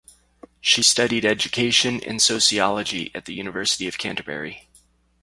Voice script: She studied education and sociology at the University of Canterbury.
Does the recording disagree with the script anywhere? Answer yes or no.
no